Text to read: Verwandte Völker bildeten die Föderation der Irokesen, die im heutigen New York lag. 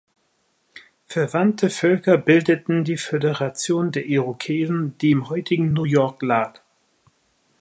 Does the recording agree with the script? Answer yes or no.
yes